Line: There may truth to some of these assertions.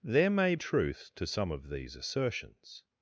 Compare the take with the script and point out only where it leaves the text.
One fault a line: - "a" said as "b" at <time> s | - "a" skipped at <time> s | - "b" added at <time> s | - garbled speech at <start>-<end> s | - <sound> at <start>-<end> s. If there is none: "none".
none